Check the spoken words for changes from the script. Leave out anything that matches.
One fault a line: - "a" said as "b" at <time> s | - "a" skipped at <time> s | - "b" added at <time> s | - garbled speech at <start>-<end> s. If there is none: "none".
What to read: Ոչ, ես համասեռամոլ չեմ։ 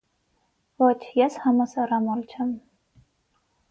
none